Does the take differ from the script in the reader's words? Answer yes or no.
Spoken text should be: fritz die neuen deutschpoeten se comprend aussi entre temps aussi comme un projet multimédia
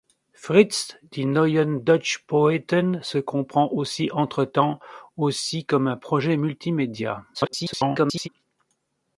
yes